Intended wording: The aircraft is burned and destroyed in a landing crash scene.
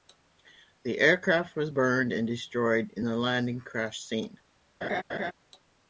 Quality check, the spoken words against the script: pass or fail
fail